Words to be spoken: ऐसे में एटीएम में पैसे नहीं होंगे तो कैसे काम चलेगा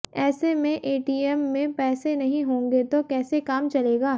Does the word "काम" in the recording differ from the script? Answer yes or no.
no